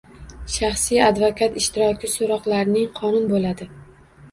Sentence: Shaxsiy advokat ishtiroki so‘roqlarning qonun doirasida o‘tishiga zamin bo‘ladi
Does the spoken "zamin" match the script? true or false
false